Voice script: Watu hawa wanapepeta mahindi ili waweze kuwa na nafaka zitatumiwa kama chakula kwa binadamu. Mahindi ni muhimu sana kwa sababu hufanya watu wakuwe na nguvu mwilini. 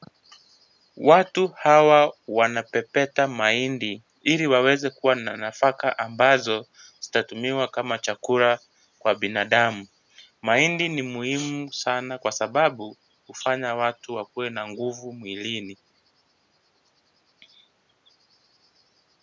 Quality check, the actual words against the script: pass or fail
fail